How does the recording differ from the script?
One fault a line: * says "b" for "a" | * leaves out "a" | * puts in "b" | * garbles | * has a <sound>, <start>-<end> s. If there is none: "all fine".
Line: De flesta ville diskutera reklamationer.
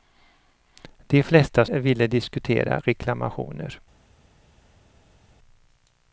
all fine